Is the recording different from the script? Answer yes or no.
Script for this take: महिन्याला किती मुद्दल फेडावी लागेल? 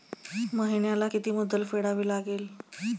no